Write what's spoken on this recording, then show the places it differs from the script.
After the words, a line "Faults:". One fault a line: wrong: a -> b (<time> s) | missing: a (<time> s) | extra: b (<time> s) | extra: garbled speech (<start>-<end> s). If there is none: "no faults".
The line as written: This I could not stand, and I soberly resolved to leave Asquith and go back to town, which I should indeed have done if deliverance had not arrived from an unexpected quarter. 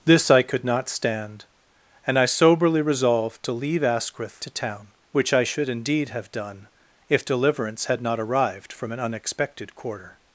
This I could not stand, and I soberly resolved to leave Asquith to town, which I should indeed have done if deliverance had not arrived from an unexpected quarter.
Faults:
missing: and go back (4.4 s)